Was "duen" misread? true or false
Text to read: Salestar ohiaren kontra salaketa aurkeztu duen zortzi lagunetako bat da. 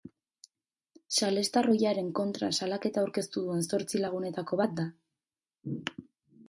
false